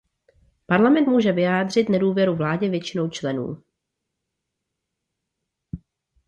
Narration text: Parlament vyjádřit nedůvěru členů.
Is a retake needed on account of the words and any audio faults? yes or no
yes